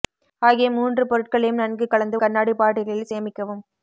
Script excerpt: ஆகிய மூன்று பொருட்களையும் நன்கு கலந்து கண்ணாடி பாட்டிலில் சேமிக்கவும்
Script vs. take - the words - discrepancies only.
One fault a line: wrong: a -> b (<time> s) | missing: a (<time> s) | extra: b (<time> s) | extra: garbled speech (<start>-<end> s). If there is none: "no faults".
no faults